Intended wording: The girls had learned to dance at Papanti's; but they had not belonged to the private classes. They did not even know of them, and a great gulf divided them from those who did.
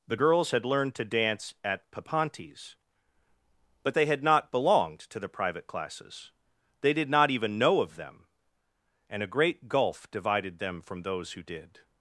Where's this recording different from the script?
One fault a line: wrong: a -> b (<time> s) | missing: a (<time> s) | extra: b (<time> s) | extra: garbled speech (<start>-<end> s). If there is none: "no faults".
no faults